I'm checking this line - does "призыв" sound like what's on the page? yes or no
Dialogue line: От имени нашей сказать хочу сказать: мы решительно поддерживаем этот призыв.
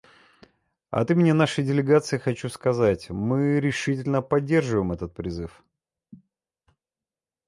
yes